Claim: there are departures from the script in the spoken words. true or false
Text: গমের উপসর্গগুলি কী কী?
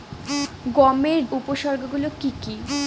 false